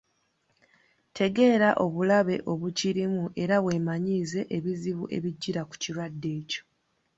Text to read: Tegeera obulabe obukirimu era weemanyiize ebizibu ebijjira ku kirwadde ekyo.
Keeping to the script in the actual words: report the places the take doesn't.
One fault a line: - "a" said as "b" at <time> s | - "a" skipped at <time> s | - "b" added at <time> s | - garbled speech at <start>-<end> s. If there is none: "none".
none